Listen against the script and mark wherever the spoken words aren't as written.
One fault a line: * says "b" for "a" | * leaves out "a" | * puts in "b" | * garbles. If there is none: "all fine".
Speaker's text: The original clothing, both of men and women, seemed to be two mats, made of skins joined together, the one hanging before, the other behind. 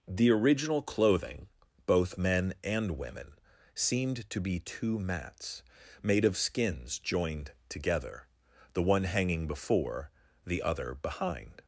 * leaves out "of"